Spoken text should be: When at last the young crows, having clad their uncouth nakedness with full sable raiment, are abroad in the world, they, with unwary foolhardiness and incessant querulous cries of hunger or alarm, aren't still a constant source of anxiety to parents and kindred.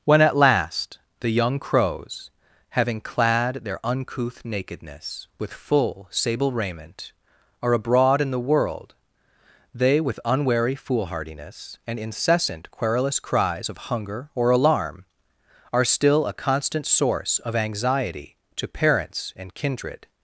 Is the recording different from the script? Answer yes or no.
yes